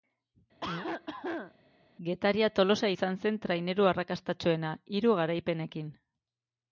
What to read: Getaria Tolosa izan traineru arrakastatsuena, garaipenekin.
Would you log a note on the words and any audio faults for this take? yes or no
yes